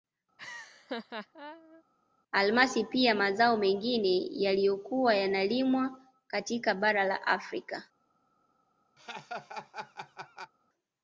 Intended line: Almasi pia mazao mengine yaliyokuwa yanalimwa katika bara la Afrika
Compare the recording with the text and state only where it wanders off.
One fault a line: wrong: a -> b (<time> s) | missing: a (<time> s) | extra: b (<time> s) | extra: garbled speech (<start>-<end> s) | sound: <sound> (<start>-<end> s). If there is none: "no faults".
sound: laugh (0.4-1.8 s)
sound: laugh (9.0-10.5 s)